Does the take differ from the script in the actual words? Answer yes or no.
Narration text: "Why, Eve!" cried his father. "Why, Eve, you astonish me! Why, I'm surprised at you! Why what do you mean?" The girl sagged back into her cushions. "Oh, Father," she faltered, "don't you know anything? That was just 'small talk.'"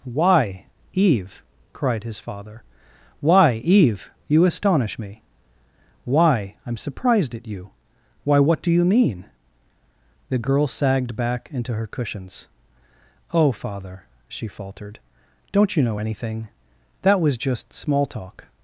no